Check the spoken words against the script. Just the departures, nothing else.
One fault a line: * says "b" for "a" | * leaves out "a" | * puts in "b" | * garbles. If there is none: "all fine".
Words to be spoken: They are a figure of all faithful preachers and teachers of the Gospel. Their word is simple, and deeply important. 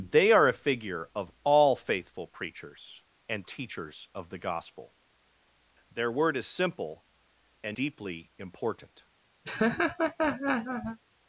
all fine